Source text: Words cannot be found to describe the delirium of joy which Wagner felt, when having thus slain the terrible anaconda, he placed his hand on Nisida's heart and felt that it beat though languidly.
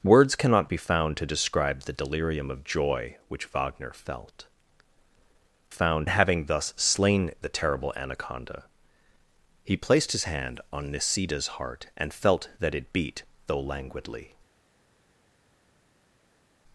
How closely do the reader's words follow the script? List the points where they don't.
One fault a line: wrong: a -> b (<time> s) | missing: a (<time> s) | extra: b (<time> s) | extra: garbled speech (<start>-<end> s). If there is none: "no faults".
wrong: when -> found (5.7 s)